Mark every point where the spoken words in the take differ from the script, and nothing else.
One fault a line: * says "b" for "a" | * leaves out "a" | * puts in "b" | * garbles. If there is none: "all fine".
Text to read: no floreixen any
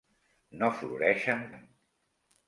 all fine